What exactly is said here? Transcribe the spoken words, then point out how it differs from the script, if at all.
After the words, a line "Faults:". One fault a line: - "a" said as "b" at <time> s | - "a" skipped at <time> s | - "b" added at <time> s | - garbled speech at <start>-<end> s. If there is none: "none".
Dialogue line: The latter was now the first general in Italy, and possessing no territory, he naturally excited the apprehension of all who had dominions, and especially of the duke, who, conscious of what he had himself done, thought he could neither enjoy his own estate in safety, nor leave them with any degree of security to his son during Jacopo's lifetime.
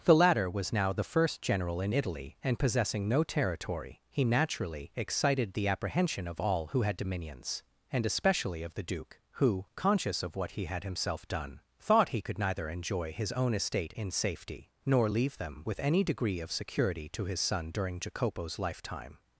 The latter was now the first general in Italy, and possessing no territory, he naturally excited the apprehension of all who had dominions, and especially of the duke, who, conscious of what he had himself done, thought he could neither enjoy his own estate in safety, nor leave them with any degree of security to his son during Jacopo's lifetime.
Faults:
none